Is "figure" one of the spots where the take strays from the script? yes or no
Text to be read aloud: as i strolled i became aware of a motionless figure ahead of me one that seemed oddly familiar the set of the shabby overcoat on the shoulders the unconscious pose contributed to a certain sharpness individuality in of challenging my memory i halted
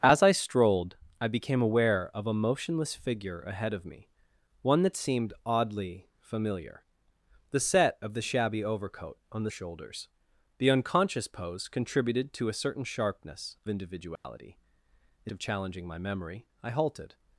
no